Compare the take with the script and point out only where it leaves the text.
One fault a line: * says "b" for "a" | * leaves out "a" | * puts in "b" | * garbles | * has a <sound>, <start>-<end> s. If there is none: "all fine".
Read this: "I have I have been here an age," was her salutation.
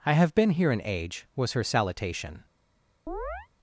* leaves out "I have"
* has a chirp, 3.1-3.5 s